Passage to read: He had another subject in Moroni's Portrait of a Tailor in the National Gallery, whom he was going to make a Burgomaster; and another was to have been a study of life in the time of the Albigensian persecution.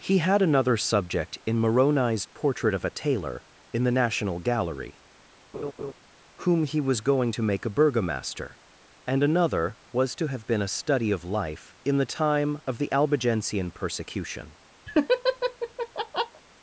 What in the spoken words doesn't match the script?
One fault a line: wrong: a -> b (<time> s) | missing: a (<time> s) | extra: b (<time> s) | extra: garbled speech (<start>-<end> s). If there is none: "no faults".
no faults